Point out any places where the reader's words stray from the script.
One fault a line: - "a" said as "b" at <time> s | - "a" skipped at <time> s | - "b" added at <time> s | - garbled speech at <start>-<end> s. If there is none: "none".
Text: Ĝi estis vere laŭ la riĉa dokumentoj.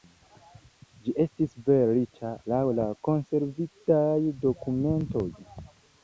- "riĉa" added at 2.0 s
- "riĉa" said as "konservitaj" at 3.1 s